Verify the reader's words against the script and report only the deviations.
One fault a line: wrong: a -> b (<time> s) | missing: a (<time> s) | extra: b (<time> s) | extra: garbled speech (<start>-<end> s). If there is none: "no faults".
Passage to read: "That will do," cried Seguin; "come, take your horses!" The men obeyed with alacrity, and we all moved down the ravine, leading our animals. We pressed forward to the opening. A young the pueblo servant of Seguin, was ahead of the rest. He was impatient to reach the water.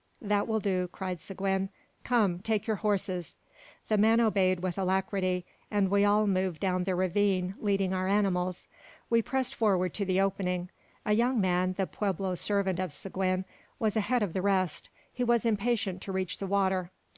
extra: man (11.4 s)